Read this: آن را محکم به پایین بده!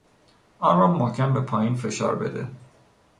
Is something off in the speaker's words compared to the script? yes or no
yes